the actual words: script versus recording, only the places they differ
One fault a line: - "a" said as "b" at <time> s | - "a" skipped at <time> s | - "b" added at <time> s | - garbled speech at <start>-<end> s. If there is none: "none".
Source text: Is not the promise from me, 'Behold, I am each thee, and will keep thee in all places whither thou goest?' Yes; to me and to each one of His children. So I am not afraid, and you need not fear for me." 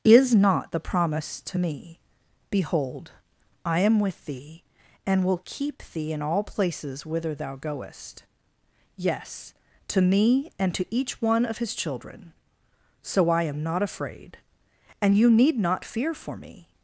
- "from" said as "to" at 1.4 s
- "each" said as "with" at 4.0 s